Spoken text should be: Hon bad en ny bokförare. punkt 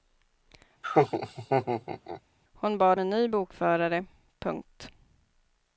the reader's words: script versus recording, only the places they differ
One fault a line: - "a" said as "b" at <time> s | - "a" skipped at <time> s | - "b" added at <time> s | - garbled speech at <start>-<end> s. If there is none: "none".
none